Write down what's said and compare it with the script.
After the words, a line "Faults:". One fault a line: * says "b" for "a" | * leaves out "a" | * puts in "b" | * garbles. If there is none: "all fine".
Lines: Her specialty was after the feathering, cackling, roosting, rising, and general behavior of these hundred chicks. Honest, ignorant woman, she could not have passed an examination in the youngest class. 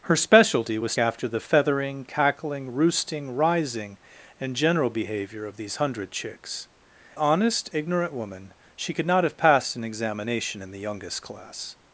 Her specialty was after the feathering, cackling, roosting, rising, and general behavior of these hundred chicks. Honest, ignorant woman, she could not have passed an examination in the youngest class.
Faults:
all fine